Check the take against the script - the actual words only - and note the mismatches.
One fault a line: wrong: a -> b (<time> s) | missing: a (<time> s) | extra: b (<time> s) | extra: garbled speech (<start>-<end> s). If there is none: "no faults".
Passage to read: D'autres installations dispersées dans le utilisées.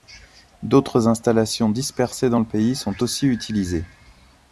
extra: pays sont aussi (2.5 s)